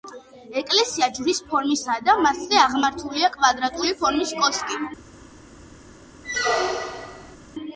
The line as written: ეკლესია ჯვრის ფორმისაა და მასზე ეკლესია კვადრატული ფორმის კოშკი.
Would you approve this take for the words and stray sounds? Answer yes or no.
no